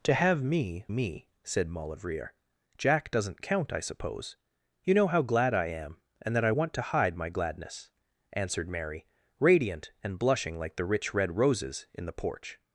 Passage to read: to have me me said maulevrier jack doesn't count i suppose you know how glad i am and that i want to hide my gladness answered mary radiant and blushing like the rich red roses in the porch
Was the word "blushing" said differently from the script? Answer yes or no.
no